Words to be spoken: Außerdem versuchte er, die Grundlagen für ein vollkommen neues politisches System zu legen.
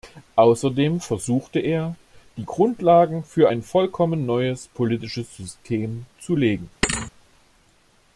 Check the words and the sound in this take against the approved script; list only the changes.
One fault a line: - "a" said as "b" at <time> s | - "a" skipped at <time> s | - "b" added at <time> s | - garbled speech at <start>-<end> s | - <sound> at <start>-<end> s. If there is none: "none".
- thud at 6.8-7.1 s